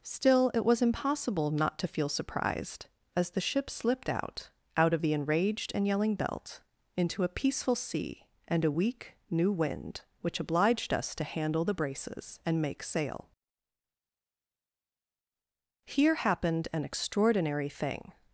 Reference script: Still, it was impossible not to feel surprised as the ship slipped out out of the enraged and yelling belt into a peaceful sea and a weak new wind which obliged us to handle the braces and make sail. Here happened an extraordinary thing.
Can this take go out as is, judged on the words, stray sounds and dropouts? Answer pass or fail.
pass